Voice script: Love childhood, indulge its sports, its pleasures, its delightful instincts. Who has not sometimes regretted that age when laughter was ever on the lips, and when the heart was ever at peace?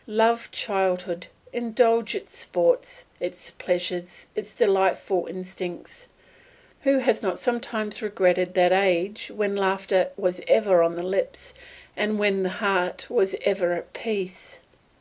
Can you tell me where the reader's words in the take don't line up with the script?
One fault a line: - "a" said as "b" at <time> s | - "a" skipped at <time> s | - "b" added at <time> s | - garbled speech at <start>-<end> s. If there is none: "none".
none